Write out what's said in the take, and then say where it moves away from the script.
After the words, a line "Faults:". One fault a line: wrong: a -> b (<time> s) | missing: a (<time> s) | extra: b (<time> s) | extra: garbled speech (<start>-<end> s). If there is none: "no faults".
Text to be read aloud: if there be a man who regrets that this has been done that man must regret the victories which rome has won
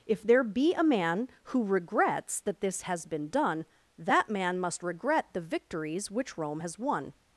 if there be a man who regrets that this has been done that man must regret the victories which rome has won
Faults:
no faults